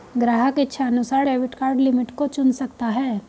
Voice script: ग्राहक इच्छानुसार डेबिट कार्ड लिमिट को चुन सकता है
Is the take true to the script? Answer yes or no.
yes